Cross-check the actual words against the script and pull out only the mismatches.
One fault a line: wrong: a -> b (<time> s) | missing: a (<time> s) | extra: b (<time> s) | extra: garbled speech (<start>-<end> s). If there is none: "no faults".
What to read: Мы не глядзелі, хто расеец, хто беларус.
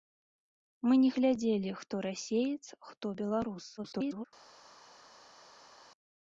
extra: garbled speech (3.8-4.3 s)